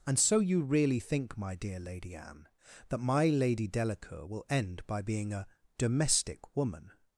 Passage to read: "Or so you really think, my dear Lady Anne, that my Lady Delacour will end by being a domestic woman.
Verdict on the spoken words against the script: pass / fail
fail